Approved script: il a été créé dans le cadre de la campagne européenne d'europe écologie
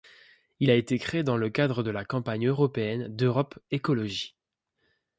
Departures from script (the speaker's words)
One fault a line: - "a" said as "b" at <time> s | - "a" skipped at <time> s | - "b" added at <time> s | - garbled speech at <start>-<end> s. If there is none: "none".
none